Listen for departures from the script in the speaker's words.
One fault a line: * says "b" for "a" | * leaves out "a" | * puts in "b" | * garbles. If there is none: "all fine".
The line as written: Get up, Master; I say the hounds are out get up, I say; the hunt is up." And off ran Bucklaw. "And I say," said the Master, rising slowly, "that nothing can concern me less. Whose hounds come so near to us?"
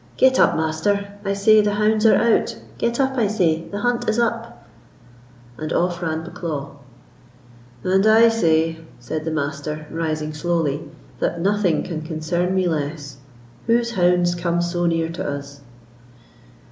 all fine